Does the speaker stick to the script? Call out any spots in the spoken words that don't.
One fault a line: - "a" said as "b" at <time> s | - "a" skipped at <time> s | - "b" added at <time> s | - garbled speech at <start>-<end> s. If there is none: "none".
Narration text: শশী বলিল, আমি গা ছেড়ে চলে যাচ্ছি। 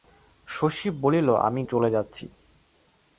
- "গা ছেড়ে" skipped at 1.6 s